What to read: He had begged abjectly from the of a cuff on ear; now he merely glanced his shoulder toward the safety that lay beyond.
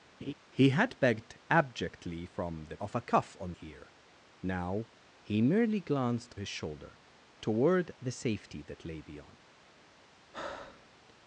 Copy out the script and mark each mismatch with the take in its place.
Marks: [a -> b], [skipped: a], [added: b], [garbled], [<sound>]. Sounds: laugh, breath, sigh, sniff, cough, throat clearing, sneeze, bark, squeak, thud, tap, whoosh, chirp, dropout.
[laugh] He had begged abjectly from the of a cuff on ear; now he merely glanced his shoulder toward the safety that lay beyond. [breath]